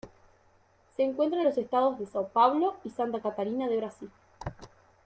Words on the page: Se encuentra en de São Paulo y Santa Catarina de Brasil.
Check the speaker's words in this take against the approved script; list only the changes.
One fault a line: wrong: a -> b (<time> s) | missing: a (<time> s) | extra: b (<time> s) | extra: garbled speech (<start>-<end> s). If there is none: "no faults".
extra: los estados (1.4 s)